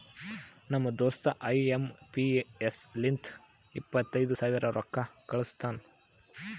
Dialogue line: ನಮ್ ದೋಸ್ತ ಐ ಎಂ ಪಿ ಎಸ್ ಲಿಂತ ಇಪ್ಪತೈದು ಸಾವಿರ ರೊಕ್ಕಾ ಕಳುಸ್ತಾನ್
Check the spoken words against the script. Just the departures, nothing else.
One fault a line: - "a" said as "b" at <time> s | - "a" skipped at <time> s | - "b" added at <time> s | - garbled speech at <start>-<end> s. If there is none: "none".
none